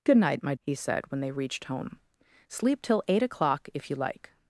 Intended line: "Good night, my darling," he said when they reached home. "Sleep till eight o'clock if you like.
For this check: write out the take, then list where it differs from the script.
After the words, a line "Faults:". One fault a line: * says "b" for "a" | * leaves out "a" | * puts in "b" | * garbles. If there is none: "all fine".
"Good night, my," he said when they reached home. "Sleep till eight o'clock if you like.
Faults:
* leaves out "darling"